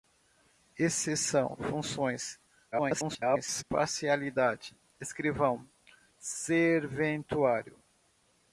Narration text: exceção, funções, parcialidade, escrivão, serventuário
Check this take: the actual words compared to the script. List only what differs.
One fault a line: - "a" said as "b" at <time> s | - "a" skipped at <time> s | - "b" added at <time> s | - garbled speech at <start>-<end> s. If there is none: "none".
- garbled speech at 2.7-3.6 s